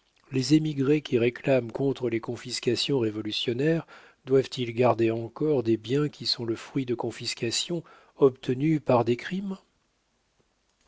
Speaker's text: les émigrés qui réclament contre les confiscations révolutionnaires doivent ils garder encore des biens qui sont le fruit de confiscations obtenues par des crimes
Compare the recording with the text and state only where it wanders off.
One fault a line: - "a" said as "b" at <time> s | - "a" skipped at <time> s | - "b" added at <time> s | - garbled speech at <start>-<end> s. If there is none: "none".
none